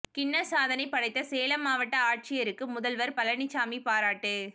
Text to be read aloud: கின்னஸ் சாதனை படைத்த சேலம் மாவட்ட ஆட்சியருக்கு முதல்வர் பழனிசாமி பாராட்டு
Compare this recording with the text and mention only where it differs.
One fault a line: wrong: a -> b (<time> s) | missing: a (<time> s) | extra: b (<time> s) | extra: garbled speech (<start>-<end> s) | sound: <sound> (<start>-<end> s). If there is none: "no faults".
no faults